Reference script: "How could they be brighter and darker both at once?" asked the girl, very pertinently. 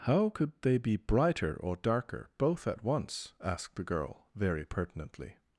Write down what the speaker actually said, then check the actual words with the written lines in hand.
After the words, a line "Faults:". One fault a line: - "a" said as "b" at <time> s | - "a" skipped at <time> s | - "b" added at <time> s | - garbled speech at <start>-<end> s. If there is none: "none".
"How could they be brighter or darker both at once?" asked the girl, very pertinently.
Faults:
- "and" said as "or" at 1.6 s